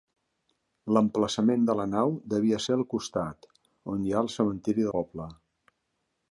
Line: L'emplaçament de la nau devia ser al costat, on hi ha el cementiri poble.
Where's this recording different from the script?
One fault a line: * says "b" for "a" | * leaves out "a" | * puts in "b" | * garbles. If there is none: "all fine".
all fine